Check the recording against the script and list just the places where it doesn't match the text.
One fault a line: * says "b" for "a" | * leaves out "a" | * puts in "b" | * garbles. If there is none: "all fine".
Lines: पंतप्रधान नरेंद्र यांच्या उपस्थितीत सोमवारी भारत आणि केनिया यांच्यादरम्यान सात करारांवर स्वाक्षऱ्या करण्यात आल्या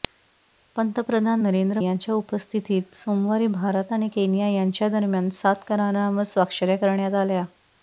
all fine